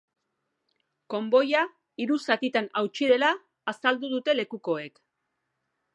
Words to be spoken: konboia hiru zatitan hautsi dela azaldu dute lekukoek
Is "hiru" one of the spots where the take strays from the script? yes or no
no